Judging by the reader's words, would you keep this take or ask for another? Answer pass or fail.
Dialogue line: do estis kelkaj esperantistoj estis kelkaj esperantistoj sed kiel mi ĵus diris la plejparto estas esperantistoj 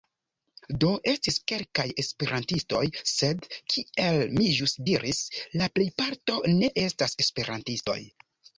fail